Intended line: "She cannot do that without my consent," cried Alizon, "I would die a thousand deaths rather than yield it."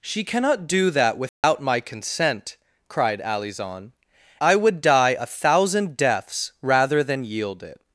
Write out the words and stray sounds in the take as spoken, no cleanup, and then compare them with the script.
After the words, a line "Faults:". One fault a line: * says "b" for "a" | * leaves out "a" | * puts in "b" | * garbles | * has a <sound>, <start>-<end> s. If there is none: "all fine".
"She cannot do that without my consent," cried Alizon, "I would die a thousand deaths rather than yield it."
Faults:
* has a dropout, 1.3-1.4 s